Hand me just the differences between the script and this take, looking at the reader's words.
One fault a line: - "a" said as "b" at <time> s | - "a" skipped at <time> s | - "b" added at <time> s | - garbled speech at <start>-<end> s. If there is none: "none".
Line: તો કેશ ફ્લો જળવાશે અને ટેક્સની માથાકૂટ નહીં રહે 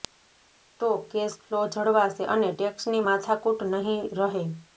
none